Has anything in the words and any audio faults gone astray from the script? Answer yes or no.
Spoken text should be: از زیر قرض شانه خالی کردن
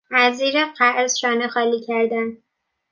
no